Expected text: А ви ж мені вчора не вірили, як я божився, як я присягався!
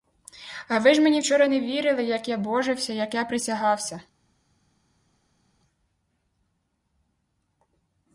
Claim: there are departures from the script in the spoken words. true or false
false